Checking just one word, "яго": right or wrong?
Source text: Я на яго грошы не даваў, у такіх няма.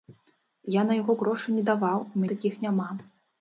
right